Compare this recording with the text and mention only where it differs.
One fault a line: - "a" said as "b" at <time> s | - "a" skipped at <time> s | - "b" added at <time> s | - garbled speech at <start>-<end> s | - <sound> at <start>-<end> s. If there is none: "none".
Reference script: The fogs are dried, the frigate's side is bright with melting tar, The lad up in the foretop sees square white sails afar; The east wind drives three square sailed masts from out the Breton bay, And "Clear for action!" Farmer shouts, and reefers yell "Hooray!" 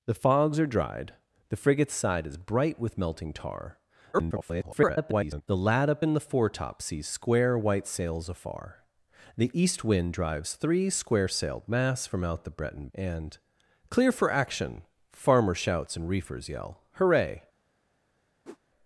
- garbled speech at 4.1-5.4 s
- "bay" skipped at 12.9 s
- whoosh at 18.4-18.6 s